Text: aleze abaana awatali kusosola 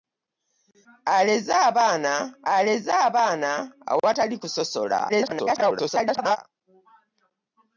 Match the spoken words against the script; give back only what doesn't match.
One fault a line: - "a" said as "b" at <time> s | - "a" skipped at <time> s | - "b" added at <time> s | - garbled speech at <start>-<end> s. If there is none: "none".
- "aleze abaana" added at 2.5 s
- garbled speech at 5.1-6.4 s